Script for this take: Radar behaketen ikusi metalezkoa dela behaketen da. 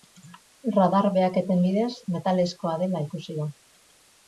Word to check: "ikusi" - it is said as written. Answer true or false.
false